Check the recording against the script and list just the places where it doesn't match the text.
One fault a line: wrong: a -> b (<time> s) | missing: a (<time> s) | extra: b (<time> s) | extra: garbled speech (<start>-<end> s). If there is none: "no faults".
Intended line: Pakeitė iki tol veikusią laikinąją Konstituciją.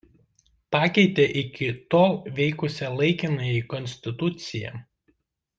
no faults